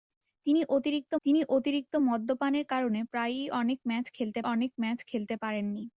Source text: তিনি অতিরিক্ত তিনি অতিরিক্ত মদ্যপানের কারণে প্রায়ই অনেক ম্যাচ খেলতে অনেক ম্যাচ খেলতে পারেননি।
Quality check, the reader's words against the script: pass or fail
pass